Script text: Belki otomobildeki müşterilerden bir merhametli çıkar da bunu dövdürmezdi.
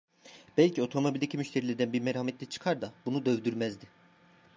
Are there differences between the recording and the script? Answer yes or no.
no